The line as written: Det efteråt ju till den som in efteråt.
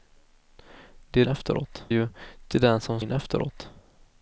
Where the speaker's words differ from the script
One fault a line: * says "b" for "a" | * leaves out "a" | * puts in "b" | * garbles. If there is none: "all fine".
all fine